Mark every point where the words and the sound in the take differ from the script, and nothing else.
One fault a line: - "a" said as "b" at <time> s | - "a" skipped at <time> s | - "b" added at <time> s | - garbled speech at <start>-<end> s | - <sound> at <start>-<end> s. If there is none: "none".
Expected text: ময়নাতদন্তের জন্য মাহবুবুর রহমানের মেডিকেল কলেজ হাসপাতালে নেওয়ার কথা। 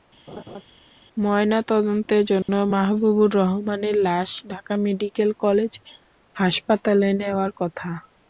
- laugh at 0.3-0.6 s
- dropout at 2.4-2.5 s
- "লাশ ঢাকা" added at 4.1 s